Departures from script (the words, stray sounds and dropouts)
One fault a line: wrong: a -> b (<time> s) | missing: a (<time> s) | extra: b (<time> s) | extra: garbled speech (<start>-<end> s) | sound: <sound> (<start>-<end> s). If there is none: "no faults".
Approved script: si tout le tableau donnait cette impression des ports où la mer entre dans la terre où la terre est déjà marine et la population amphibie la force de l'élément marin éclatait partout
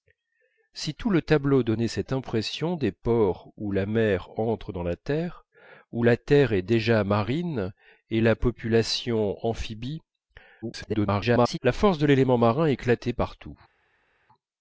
extra: garbled speech (10.6-11.6 s)